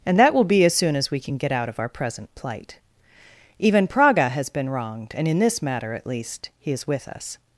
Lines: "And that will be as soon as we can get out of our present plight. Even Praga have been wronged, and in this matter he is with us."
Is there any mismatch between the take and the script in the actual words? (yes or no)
yes